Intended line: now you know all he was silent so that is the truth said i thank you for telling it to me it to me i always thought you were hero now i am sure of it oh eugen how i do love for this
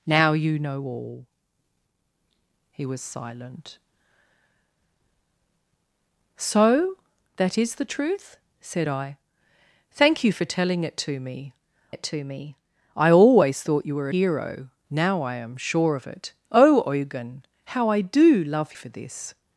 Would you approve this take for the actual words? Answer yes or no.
yes